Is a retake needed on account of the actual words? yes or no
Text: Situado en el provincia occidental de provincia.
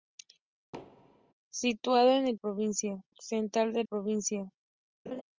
no